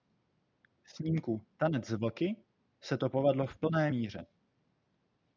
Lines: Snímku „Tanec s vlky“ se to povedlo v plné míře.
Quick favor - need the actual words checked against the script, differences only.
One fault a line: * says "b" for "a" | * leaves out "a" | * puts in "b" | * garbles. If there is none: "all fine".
all fine